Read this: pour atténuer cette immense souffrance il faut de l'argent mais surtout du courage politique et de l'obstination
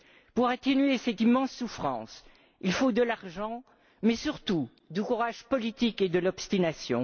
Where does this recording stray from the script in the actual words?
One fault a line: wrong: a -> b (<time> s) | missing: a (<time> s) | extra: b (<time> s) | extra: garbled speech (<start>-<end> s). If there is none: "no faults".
no faults